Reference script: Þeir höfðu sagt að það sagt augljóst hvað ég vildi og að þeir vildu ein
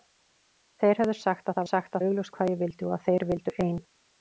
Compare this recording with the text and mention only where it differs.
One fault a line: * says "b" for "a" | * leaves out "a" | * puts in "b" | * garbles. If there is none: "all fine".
all fine